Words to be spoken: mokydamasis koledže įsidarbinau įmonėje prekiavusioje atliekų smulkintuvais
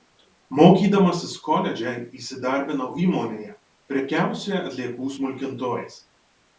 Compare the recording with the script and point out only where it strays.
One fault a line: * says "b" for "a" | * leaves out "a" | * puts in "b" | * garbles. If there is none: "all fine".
all fine